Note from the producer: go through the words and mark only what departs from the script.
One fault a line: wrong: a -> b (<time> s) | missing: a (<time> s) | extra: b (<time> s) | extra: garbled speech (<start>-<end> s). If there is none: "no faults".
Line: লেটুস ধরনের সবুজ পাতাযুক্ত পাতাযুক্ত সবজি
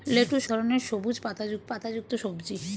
no faults